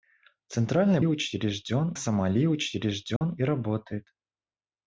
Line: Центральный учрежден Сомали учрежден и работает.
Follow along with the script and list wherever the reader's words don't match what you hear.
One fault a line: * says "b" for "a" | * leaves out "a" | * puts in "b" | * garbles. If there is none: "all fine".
all fine